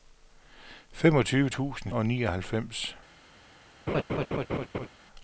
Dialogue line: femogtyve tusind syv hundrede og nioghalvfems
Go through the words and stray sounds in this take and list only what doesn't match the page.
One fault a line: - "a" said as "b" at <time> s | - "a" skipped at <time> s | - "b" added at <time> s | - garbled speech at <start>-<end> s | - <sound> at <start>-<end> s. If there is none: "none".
- "syv hundrede" skipped at 1.9 s
- laugh at 3.9-4.9 s